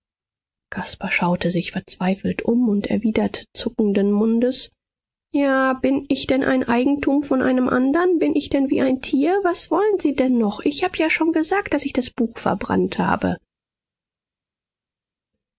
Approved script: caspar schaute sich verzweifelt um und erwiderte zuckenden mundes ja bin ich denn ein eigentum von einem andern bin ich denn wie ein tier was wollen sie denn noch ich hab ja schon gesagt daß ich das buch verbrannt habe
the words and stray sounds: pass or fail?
pass